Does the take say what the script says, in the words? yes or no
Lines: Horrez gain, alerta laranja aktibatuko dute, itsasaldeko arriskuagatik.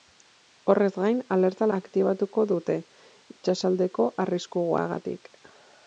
no